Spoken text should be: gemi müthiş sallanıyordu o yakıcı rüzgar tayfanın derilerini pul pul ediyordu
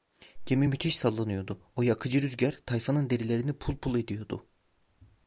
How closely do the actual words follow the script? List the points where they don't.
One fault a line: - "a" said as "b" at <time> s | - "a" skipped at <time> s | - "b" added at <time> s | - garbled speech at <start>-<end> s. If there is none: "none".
none